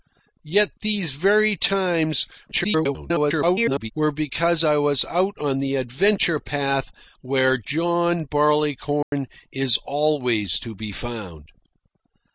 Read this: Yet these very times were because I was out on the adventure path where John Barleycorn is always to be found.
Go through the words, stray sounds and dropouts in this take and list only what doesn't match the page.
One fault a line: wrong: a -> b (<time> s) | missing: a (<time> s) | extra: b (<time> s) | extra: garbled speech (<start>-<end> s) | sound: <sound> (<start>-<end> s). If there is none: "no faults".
extra: garbled speech (2.5-3.9 s)
sound: dropout (9.0-9.1 s)